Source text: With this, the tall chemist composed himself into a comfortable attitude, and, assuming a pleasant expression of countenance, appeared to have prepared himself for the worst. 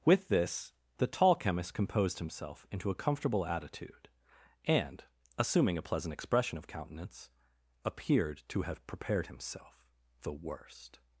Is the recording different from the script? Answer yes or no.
yes